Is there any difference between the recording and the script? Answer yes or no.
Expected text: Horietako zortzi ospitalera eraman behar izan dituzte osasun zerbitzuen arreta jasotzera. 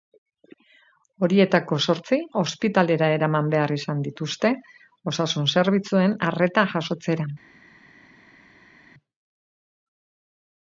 no